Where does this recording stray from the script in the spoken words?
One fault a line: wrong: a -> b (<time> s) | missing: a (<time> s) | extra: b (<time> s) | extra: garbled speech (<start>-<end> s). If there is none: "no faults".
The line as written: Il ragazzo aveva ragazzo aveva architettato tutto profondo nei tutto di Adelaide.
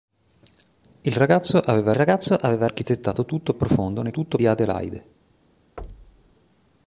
no faults